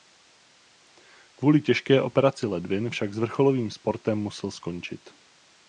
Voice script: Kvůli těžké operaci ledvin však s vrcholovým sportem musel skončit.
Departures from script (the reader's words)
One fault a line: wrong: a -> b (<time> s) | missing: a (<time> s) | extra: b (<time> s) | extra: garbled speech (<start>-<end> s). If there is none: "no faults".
no faults